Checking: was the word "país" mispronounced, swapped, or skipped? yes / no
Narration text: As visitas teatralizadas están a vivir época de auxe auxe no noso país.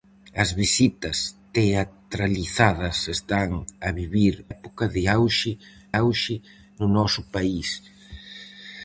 no